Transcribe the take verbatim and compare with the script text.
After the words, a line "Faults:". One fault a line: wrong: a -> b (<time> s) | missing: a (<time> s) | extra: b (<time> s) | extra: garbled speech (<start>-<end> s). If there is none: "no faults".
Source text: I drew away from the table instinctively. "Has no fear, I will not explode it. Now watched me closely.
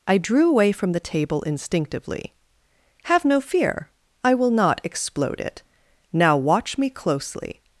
I drew away from the table instinctively. "Have no fear, I will not explode it. Now watch me closely.
Faults:
wrong: Has -> Have (3.0 s)
wrong: watched -> watch (6.3 s)